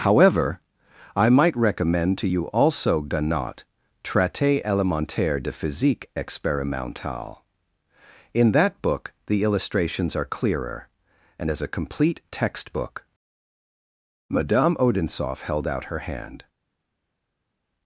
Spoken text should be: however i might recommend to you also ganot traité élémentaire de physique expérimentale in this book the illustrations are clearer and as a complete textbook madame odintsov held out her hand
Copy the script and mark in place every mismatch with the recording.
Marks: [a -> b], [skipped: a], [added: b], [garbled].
however i might recommend to you also ganot traité élémentaire de physique expérimentale in [this -> that] book the illustrations are clearer and as a complete textbook madame odintsov held out her hand